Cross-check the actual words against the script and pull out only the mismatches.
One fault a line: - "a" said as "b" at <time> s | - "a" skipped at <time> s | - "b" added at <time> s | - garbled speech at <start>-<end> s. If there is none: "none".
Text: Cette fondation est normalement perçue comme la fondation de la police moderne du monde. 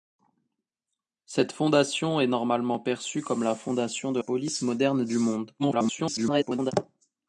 - "la" skipped at 4.2 s
- garbled speech at 5.6-6.7 s